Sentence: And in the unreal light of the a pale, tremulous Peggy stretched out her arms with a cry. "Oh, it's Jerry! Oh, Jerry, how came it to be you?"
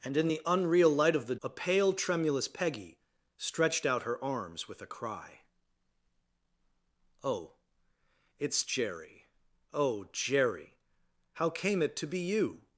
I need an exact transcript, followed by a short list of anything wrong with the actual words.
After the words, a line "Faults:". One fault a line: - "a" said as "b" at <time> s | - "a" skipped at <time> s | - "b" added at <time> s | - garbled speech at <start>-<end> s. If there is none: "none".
And in the unreal light of the a pale, tremulous Peggy stretched out her arms with a cry. "Oh, it's Jerry! Oh, Jerry, how came it to be you?"
Faults:
none